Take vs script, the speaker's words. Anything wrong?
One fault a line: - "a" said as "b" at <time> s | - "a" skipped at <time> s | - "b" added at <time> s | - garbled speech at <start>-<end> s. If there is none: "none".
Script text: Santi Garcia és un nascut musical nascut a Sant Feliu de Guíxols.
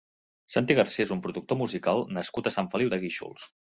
- "nascut" said as "productor" at 1.3 s